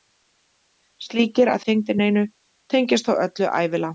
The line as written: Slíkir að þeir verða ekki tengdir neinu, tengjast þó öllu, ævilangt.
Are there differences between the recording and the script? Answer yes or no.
yes